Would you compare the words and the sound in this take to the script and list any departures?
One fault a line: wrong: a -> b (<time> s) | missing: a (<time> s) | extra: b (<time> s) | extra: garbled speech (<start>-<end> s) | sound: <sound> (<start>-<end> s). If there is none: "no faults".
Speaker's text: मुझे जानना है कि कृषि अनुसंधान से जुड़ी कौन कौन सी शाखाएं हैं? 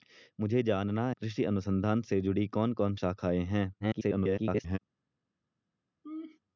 missing: है कि (1.1 s)
missing: सी (3.0 s)
extra: garbled speech (3.8-4.8 s)
sound: laugh (6.0-6.4 s)